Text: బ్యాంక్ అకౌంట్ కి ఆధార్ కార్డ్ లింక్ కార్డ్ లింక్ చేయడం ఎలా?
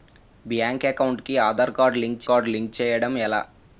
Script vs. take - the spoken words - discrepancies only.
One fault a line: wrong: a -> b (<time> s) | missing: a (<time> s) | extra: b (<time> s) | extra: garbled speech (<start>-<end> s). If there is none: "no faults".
no faults